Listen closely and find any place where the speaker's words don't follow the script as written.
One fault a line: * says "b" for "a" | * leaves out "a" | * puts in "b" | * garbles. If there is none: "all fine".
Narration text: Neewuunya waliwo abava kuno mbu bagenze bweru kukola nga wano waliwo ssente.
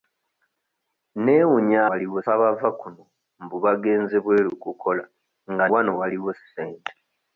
all fine